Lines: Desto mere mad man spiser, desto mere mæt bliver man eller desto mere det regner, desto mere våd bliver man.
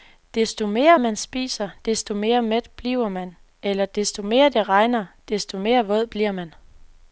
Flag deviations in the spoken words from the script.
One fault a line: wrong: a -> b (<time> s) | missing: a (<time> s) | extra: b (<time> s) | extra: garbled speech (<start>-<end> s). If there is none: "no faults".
missing: mad (1.0 s)